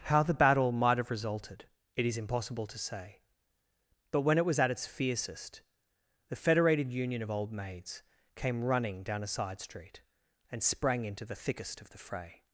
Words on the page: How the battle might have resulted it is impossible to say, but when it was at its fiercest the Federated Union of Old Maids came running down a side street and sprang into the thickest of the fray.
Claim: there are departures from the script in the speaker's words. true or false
false